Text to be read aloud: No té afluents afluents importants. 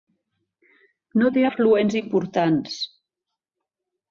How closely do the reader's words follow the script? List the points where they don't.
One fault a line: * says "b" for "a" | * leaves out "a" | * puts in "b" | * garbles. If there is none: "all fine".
* leaves out "afluents"